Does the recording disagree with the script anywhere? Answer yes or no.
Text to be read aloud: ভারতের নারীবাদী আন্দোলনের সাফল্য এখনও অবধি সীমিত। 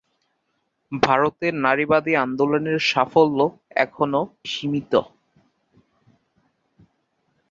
yes